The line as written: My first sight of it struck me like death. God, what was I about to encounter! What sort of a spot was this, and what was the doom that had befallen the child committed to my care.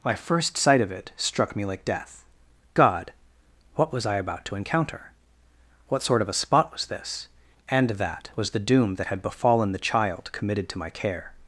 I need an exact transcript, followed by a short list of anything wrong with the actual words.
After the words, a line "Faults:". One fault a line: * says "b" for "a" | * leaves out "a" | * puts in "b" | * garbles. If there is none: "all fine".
My first sight of it struck me like death. God, what was I about to encounter! What sort of a spot was this, and that was the doom that had befallen the child committed to my care.
Faults:
* says "that" for "what"